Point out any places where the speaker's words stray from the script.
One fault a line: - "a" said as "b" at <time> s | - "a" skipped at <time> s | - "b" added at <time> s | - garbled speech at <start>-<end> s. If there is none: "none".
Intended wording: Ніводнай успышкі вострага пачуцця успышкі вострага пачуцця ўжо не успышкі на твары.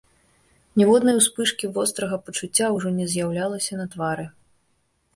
- "успышкі вострага пачуцця" skipped at 2.7 s
- "успышкі" said as "з'яўлялася" at 3.2 s